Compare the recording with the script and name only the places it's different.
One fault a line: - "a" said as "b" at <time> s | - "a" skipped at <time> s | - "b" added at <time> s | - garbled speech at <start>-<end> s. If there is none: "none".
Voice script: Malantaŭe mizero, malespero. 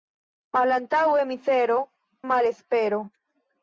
none